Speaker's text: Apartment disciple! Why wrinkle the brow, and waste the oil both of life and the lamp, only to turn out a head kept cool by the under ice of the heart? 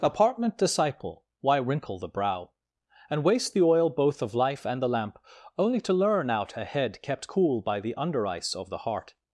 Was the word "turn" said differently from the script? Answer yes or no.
yes